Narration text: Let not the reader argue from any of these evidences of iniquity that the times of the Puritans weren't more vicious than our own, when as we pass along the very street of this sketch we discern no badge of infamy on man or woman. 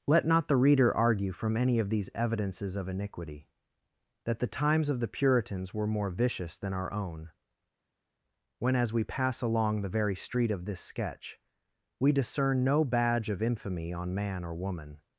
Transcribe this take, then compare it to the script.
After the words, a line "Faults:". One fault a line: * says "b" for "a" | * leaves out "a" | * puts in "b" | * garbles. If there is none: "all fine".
Let not the reader argue from any of these evidences of iniquity that the times of the Puritans were more vicious than our own, when as we pass along the very street of this sketch we discern no badge of infamy on man or woman.
Faults:
* says "were" for "weren't"